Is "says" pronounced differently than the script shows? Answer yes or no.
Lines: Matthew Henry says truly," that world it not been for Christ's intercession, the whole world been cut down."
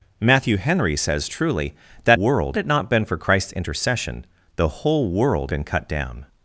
no